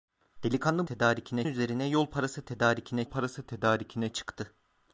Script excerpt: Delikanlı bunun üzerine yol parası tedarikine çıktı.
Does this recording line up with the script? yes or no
no